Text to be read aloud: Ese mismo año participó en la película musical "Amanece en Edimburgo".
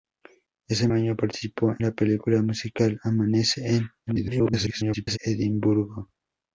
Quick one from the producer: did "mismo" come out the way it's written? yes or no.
no